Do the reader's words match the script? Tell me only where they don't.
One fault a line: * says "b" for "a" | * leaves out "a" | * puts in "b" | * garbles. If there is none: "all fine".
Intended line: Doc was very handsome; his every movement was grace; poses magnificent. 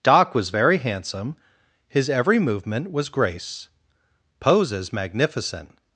all fine